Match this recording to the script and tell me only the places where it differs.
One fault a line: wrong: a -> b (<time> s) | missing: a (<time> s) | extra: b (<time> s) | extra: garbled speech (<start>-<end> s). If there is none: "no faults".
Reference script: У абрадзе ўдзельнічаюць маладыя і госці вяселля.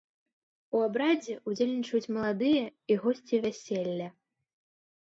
no faults